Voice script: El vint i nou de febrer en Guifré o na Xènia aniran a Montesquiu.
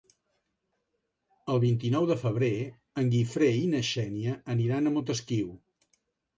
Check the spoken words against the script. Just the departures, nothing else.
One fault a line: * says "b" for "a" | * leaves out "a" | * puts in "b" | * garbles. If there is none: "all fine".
* says "i" for "o"